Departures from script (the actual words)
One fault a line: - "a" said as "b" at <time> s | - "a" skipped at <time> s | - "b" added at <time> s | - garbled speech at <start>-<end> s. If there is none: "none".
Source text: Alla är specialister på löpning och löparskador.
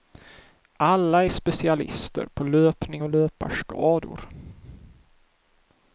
none